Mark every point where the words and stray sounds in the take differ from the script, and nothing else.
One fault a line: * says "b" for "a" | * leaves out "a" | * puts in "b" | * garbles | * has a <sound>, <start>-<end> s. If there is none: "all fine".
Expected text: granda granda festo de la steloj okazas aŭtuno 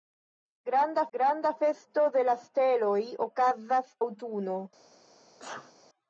* has a sneeze, 5.4-5.7 s